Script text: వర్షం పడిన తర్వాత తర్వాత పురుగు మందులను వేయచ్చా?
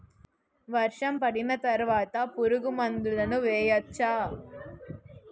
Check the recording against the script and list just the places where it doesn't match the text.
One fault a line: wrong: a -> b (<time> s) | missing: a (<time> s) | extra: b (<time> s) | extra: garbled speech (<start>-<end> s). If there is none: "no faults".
missing: తర్వాత (2.2 s)